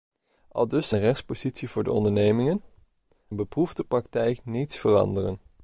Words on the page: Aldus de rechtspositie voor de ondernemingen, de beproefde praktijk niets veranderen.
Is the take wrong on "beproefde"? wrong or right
right